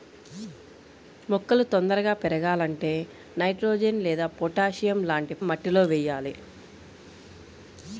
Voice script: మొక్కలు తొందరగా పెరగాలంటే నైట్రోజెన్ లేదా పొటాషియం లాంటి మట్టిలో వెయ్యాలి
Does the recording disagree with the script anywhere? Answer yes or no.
no